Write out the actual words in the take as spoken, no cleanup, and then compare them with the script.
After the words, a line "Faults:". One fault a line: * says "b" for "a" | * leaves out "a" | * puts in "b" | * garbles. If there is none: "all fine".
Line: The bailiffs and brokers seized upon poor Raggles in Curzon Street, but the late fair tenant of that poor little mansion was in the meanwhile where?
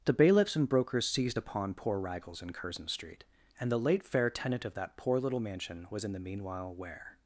The bailiffs and brokers seized upon poor Raggles in Curzon Street, and the late fair tenant of that poor little mansion was in the meanwhile where?
Faults:
* says "and" for "but"